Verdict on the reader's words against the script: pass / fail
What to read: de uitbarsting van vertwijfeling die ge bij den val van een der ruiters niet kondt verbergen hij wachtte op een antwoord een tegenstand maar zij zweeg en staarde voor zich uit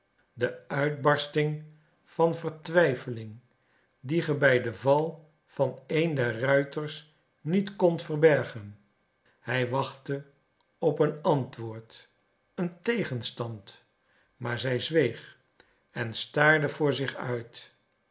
pass